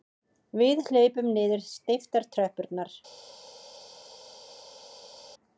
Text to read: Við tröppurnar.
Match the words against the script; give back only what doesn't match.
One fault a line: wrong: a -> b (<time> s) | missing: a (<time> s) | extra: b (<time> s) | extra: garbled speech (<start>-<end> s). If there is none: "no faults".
extra: hlaupum niður steyptar (0.9 s)